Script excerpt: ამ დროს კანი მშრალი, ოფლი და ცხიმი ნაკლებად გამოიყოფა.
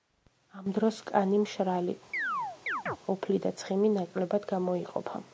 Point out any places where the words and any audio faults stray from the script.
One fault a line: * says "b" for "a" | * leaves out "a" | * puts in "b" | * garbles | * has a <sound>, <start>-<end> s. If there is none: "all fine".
* has a chirp, 2.1-3.0 s